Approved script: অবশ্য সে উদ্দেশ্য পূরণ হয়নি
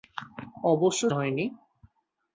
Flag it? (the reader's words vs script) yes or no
yes